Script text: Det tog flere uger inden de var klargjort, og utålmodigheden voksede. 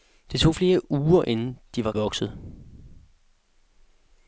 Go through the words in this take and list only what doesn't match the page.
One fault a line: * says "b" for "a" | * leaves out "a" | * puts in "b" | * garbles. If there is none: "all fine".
* leaves out "klargjort og utålmodigheden"